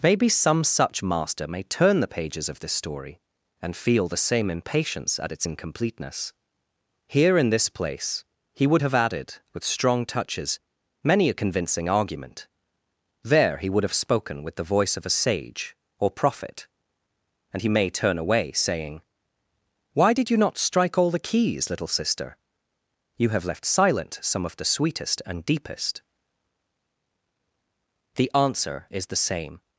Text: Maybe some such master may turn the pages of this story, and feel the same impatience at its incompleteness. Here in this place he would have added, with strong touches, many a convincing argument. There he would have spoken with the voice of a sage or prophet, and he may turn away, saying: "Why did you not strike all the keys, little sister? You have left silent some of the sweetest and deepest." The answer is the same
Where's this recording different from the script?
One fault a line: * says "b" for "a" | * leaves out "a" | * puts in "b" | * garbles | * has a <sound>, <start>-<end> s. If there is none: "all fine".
all fine